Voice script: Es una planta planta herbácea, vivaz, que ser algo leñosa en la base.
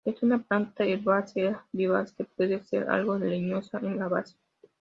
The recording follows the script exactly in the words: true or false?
false